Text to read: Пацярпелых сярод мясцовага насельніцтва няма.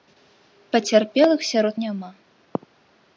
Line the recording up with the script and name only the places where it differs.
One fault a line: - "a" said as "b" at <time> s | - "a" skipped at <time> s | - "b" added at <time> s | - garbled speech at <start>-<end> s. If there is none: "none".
- "мясцовага насельніцтва" skipped at 1.8 s